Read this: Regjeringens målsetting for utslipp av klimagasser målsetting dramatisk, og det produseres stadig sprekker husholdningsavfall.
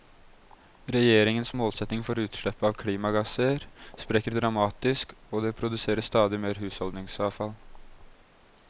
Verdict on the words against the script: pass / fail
fail